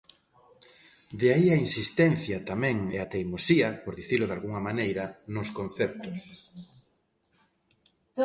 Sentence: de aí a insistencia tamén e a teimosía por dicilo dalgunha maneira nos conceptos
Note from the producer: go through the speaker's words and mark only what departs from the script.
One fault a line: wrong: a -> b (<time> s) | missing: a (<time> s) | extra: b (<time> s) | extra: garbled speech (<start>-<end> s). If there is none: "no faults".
no faults